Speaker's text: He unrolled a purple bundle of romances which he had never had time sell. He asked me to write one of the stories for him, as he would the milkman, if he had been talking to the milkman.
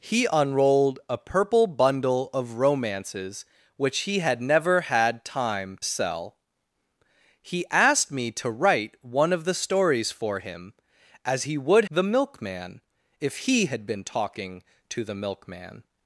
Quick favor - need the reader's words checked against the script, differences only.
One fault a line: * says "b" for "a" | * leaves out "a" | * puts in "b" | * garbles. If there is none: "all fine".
all fine